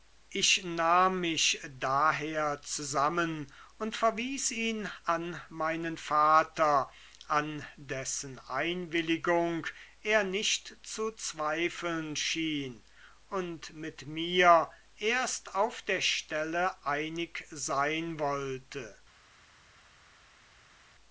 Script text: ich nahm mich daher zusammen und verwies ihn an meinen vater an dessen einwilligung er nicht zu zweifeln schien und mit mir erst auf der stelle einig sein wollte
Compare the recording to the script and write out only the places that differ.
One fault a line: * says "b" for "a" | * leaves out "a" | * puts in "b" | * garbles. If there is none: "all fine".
all fine